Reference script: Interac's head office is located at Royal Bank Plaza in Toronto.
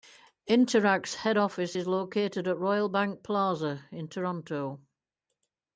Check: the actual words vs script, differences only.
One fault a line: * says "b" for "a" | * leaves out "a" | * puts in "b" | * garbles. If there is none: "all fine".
all fine